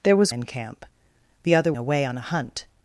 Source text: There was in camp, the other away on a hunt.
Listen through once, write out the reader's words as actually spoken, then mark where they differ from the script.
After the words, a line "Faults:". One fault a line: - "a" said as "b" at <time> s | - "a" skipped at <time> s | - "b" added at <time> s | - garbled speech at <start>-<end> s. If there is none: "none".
There was in camp, the other away on a hunt.
Faults:
none